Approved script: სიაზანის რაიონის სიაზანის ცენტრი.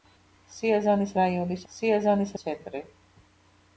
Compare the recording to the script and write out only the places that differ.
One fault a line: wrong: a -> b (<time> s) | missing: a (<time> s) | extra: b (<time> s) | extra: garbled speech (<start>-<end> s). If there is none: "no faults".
no faults